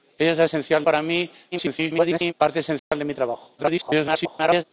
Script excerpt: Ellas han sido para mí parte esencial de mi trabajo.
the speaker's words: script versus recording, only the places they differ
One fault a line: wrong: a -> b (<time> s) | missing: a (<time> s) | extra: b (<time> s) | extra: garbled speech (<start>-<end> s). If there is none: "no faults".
wrong: sido -> esencial (0.4 s)
extra: garbled speech (1.5-2.3 s)
extra: garbled speech (3.6-4.6 s)